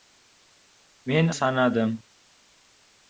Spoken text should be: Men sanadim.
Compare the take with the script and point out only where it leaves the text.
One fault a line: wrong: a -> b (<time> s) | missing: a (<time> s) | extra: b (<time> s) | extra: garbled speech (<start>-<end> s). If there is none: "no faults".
no faults